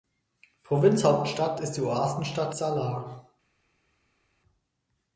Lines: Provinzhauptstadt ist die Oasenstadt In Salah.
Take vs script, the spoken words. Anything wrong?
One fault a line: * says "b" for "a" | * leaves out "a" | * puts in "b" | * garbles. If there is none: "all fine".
* leaves out "In"